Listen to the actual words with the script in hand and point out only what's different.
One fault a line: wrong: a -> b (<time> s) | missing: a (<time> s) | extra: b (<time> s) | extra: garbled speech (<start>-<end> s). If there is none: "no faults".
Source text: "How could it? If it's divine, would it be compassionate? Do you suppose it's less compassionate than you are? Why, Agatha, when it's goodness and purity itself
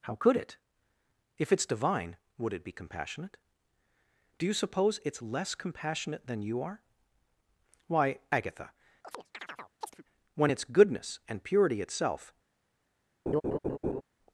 no faults